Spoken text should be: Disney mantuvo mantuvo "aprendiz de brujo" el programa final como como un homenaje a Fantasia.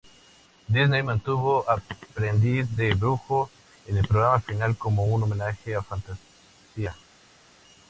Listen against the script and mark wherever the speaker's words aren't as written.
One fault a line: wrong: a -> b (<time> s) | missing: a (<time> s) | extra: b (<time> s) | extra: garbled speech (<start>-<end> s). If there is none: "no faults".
missing: mantuvo (1.6 s)
extra: en (3.9 s)
missing: como (5.0 s)